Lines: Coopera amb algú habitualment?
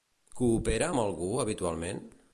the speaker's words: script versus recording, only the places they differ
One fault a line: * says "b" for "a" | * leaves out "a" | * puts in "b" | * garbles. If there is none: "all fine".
all fine